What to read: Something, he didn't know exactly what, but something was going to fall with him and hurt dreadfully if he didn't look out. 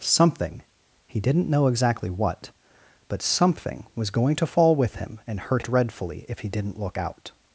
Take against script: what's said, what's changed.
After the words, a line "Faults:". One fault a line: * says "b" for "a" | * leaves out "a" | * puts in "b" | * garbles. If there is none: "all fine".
Something, he didn't know exactly what, but something was going to fall with him and hurt dreadfully if he didn't look out.
Faults:
all fine